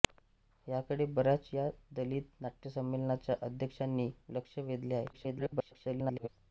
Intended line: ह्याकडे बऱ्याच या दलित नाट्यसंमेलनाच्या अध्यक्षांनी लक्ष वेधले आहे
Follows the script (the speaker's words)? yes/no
no